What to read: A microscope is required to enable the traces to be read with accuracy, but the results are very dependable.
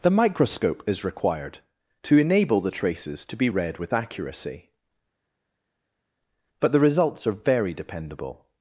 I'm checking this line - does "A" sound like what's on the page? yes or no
no